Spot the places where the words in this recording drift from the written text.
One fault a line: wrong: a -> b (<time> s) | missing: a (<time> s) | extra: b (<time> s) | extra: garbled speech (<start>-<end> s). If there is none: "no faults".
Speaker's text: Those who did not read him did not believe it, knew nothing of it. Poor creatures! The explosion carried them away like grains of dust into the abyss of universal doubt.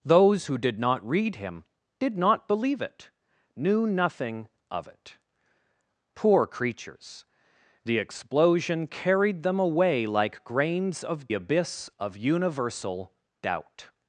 missing: dust into the (11.3 s)